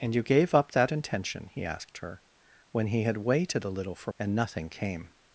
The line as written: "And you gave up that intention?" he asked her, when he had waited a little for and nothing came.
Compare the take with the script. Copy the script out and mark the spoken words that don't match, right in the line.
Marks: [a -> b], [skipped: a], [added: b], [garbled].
"And you gave up that intention?" he asked her, when he had waited a little for and nothing came.